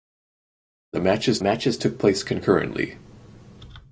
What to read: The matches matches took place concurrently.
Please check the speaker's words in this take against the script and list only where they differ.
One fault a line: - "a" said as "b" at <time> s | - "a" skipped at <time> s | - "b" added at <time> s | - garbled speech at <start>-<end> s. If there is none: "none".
none